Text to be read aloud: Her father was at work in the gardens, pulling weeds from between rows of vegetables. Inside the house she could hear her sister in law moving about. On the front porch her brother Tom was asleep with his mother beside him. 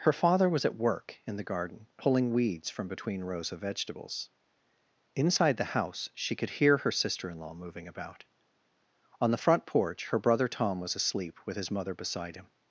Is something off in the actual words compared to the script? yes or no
yes